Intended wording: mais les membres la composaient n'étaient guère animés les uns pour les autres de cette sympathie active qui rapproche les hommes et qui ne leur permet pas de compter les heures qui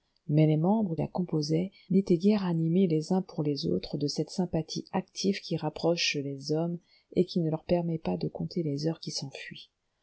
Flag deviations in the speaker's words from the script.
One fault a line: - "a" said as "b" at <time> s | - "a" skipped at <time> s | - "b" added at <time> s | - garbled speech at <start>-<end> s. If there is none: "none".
none